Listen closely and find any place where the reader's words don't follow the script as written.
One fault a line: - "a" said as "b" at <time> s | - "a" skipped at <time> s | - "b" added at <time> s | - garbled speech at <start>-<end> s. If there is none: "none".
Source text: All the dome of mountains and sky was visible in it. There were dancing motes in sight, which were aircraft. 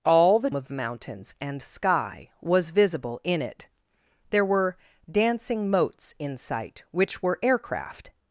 - "dome" skipped at 0.5 s